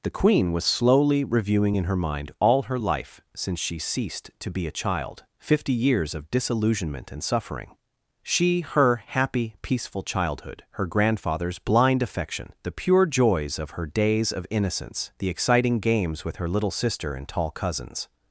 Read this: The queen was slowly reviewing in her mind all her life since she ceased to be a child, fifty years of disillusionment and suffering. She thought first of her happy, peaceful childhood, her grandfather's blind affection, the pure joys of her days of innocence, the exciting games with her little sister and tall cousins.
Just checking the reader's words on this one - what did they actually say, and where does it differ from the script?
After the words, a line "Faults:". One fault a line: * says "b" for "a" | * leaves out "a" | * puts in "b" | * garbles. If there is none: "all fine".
The queen was slowly reviewing in her mind all her life since she ceased to be a child, fifty years of disillusionment and suffering. She her happy, peaceful childhood, her grandfather's blind affection, the pure joys of her days of innocence, the exciting games with her little sister and tall cousins.
Faults:
* leaves out "thought first of"